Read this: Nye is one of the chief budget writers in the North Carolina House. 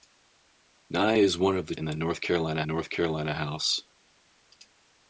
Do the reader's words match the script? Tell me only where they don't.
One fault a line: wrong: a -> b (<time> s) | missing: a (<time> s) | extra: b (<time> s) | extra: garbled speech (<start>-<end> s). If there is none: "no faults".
wrong: chief budget writers in the -> in the North Carolina (1.8 s)